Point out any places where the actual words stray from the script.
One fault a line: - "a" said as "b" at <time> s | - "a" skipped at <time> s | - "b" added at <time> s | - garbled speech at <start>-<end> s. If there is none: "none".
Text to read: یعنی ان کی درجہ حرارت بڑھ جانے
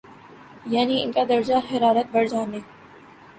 - "کی" said as "کا" at 1.1 s